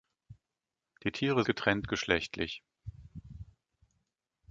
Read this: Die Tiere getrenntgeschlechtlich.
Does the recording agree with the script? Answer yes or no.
yes